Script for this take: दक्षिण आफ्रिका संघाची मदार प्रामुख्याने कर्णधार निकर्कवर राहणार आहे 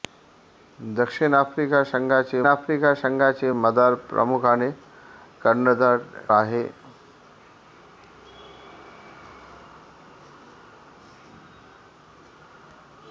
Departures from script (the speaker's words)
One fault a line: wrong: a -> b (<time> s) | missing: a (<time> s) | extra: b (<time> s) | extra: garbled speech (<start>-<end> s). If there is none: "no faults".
extra: आफ्रिका संघाची (2.5 s)
missing: निकर्कवर राहणार (6.0 s)